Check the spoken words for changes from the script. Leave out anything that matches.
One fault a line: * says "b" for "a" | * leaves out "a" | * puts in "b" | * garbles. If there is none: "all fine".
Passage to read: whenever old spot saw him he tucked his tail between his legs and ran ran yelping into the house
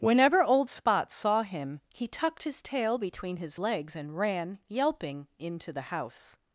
* leaves out "ran"